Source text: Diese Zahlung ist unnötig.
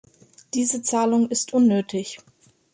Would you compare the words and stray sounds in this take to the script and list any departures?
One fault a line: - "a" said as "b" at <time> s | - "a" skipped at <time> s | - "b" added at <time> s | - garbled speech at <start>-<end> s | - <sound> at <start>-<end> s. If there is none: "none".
none